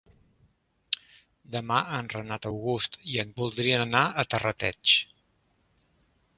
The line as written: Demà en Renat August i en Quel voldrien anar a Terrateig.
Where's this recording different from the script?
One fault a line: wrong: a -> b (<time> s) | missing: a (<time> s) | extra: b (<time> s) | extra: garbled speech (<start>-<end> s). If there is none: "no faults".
missing: Quel (3.3 s)